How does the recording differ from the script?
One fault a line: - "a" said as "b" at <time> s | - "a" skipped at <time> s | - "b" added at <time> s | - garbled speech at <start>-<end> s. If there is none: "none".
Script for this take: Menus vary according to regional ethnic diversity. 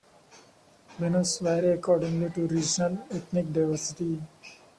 none